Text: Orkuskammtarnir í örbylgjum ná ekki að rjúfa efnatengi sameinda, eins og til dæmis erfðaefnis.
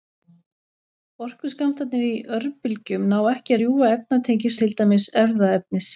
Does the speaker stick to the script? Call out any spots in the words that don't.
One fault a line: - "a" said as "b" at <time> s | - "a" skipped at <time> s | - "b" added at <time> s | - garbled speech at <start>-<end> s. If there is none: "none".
- "sameinda eins" skipped at 4.5 s